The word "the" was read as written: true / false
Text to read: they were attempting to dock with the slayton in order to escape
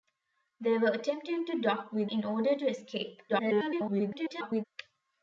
false